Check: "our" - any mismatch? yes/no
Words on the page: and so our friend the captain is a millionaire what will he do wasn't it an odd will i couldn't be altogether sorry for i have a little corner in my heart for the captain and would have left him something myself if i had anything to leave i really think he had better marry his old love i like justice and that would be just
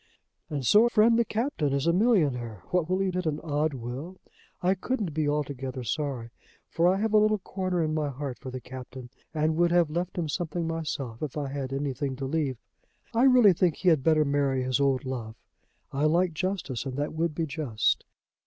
yes